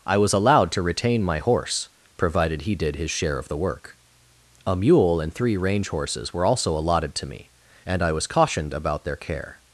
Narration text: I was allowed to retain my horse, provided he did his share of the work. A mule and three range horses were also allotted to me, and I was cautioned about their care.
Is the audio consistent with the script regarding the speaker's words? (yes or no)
yes